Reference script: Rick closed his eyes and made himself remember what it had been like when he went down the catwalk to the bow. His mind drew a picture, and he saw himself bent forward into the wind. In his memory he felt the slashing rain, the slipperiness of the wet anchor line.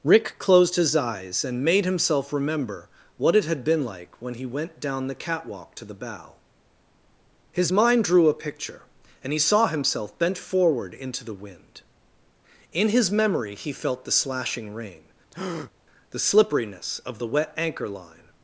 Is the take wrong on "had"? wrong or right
right